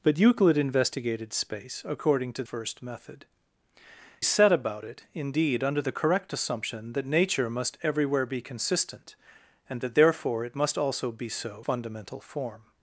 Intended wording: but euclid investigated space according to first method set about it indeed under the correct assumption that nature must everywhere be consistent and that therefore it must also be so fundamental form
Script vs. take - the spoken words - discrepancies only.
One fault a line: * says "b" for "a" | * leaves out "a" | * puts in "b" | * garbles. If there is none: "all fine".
all fine